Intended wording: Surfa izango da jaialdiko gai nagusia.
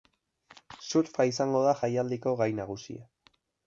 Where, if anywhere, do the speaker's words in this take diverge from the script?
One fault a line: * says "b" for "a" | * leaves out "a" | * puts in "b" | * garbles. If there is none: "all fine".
all fine